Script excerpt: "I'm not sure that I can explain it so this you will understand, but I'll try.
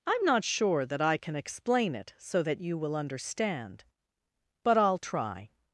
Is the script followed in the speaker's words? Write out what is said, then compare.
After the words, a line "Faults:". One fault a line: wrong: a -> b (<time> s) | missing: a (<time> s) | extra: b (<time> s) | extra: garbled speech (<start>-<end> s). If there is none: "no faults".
"I'm not sure that I can explain it so that you will understand, but I'll try.
Faults:
wrong: this -> that (2.4 s)